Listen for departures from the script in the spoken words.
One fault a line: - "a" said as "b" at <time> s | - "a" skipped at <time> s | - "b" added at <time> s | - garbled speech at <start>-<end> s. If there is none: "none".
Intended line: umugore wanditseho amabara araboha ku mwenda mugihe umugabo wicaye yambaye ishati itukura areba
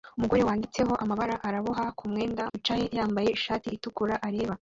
- "mugihe umugabo" skipped at 2.4 s